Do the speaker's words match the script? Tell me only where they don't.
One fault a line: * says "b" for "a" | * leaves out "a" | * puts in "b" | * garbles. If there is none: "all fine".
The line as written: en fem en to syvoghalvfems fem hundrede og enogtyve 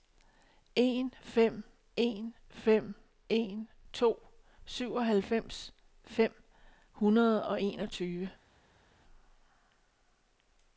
* puts in "fem en"